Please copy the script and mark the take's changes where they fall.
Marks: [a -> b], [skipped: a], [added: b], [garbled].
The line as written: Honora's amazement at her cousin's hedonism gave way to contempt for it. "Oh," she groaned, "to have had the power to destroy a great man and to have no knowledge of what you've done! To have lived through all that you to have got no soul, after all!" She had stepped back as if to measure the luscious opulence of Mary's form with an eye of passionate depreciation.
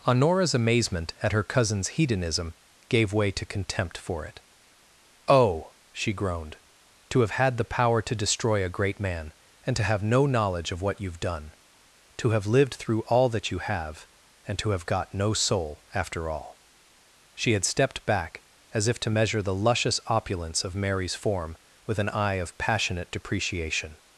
Honora's amazement at her cousin's hedonism gave way to contempt for it. "Oh," she groaned, "to have had the power to destroy a great man and to have no knowledge of what you've done! To have lived through all that you [added: have and] to have got no soul, after all!" She had stepped back as if to measure the luscious opulence of Mary's form with an eye of passionate depreciation.